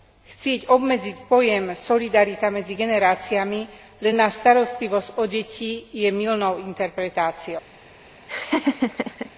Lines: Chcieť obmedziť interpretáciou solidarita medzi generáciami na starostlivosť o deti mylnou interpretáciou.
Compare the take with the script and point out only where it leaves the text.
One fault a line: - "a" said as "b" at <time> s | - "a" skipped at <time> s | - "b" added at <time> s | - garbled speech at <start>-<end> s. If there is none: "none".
- "interpretáciou" said as "pojem" at 1.3 s
- "len" added at 4.0 s
- "je" added at 5.9 s